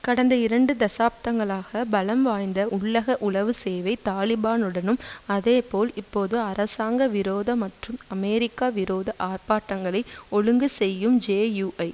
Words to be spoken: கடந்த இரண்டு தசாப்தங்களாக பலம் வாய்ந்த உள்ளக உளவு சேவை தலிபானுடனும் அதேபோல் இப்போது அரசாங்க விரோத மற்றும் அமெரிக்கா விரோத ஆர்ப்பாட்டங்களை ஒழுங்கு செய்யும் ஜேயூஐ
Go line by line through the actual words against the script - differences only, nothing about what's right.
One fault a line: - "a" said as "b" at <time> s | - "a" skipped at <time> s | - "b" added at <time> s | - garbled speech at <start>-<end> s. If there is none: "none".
none